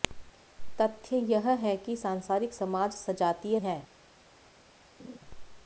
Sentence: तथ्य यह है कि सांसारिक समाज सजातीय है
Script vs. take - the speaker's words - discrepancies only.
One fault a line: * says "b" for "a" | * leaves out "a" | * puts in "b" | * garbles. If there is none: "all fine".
all fine